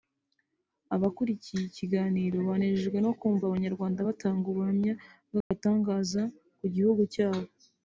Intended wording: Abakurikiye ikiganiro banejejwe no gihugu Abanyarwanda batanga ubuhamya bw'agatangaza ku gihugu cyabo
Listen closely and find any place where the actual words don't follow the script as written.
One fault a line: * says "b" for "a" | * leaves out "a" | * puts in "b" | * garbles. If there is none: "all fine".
* says "kumva" for "gihugu"